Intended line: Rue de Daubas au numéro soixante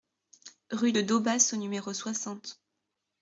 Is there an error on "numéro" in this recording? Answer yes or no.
no